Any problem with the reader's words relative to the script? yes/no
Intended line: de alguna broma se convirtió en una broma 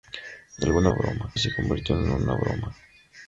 no